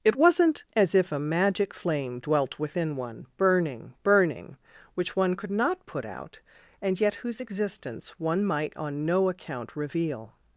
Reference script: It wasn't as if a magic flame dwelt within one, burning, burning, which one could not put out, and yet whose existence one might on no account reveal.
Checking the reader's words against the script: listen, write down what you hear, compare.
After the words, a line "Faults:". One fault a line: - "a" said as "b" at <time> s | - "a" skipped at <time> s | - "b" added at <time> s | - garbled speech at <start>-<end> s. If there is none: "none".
It wasn't as if a magic flame dwelt within one, burning, burning, which one could not put out, and yet whose existence one might on no account reveal.
Faults:
none